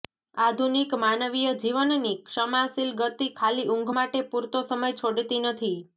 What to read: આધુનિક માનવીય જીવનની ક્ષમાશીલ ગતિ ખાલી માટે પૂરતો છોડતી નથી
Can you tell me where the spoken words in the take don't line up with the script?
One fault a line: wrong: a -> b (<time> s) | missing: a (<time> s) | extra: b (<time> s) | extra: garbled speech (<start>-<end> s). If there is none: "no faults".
extra: ઊંઘ (3.7 s)
extra: સમય (4.7 s)